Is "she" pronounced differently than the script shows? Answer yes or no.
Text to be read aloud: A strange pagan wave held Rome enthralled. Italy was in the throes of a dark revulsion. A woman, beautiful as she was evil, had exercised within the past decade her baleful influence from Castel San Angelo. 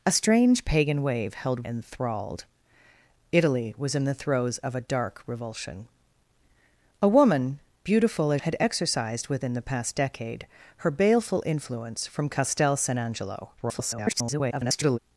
yes